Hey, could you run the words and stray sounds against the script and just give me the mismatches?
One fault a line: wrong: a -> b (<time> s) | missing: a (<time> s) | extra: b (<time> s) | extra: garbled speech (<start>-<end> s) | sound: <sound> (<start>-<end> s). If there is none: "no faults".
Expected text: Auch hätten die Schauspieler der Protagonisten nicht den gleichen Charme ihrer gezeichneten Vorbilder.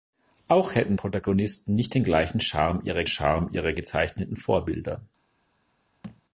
missing: die Schauspieler der (1.0 s)
extra: Charme ihrer (3.0 s)
sound: thud (6.0-6.2 s)